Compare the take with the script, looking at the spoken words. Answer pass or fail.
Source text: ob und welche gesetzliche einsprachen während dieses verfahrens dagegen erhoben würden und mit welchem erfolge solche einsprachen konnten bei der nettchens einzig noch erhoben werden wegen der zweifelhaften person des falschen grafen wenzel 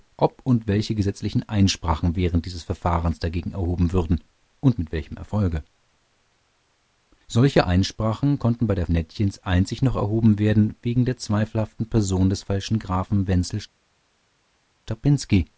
pass